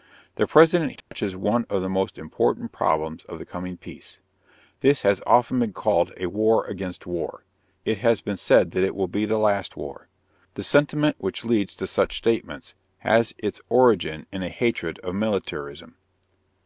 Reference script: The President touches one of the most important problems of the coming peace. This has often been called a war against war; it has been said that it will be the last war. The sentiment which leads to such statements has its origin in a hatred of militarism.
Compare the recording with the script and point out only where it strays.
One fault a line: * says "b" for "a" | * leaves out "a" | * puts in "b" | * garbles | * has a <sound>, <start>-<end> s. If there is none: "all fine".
* has a dropout, 1.0-1.1 s